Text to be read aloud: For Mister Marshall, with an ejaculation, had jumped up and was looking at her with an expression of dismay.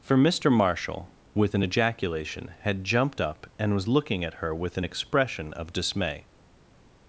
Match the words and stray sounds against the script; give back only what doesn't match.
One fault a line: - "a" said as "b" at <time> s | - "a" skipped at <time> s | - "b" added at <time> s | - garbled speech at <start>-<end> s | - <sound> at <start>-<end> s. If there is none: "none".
none